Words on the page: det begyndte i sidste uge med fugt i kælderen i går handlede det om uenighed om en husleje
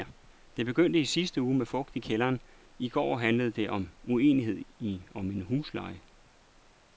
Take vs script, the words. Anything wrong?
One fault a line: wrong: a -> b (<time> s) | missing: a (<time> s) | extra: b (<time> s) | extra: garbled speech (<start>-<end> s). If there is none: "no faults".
no faults